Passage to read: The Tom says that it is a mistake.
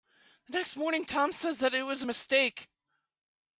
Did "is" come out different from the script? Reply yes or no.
yes